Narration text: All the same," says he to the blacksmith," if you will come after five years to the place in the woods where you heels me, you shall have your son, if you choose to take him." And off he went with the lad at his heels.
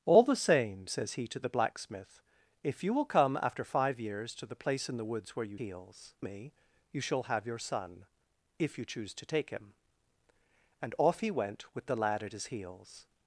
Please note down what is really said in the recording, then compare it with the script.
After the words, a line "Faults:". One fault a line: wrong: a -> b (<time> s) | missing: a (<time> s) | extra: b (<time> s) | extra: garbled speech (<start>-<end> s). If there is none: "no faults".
All the same," says he to the blacksmith," if you will come after five years to the place in the woods where you heels me, you shall have your son, if you choose to take him." And off he went with the lad at his heels.
Faults:
no faults